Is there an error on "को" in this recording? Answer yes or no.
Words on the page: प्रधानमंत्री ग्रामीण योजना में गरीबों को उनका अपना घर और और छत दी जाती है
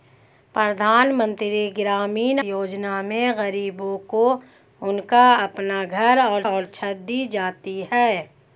no